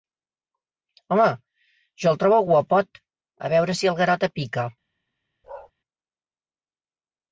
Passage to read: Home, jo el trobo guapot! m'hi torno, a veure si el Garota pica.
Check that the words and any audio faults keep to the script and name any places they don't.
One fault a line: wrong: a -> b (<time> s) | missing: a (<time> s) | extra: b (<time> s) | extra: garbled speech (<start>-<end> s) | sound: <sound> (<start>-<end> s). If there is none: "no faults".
missing: m'hi torno (3.0 s)
sound: bark (5.4-5.7 s)